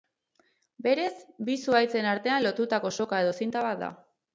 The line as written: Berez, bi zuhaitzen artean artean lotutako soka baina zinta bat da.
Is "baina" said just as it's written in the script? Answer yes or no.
no